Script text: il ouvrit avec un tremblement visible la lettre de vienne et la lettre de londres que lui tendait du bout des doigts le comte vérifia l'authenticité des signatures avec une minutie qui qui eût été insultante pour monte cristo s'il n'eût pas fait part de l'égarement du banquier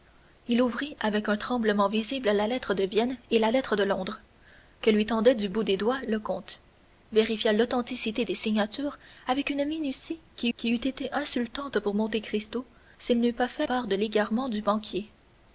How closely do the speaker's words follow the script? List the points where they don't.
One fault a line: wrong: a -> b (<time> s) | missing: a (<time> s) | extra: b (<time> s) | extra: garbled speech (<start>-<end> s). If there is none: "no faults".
no faults